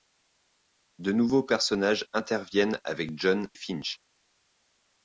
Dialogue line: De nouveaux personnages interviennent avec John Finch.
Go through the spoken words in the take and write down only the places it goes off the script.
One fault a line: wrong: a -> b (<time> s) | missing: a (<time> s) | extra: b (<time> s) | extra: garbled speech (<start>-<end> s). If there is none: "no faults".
no faults